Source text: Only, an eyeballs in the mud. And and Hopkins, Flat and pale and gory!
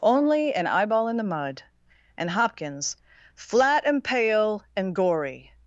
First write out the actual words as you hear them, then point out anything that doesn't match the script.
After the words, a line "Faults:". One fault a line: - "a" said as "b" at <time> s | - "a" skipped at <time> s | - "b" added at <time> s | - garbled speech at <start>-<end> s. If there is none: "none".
Only, an eyeball in the mud. And Hopkins, Flat and pale and gory!
Faults:
- "eyeballs" said as "eyeball" at 0.7 s
- "and" skipped at 2.3 s